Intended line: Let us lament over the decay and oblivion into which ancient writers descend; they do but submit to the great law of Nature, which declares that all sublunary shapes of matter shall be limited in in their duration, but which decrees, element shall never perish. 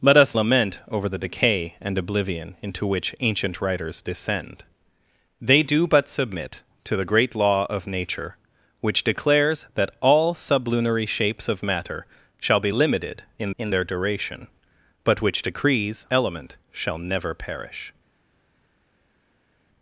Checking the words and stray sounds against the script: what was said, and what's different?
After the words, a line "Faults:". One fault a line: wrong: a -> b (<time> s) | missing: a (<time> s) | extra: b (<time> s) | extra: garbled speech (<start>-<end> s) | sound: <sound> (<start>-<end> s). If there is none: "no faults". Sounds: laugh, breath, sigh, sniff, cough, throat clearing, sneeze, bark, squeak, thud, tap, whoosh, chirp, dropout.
Let us lament over the decay and oblivion into which ancient writers descend; they do but submit to the great law of Nature, which declares that all sublunary shapes of matter shall be limited in in their duration, but which decrees, element shall never perish.
Faults:
no faults